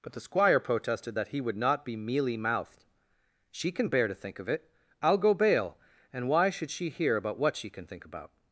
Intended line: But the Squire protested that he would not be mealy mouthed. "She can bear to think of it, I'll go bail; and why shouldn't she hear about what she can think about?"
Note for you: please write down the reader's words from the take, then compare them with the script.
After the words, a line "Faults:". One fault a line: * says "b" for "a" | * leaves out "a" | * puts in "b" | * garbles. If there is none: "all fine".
But the Squire protested that he would not be mealy mouthed. "She can bear to think of it, I'll go bail; and why should she hear about what she can think about?"
Faults:
* says "should" for "shouldn't"